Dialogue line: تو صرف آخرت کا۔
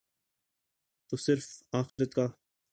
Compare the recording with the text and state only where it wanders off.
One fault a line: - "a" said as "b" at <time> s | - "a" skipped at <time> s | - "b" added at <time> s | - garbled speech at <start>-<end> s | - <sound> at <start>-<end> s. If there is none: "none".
- dropout at 1.9-2.0 s